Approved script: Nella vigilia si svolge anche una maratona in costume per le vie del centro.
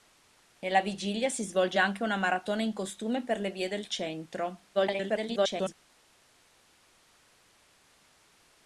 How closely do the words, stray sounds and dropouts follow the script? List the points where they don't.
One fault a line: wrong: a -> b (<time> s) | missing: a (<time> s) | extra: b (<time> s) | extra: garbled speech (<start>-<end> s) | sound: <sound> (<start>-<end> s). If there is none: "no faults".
extra: garbled speech (4.7-5.7 s)